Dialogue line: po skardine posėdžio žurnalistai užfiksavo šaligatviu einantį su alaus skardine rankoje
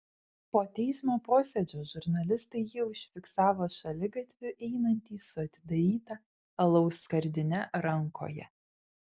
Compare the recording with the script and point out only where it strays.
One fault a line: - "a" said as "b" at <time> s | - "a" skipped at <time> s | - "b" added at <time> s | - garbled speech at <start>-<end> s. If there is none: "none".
- "skardine" said as "teismo" at 0.8 s
- "jį" added at 2.7 s
- "atidaryta" added at 5.5 s